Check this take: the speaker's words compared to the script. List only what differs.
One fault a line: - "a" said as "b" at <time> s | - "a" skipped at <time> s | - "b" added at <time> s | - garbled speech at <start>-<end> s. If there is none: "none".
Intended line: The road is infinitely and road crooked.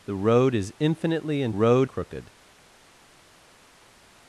none